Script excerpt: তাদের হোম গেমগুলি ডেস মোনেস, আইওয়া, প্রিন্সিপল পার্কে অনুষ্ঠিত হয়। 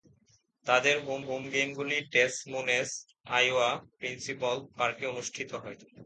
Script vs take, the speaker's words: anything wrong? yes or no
yes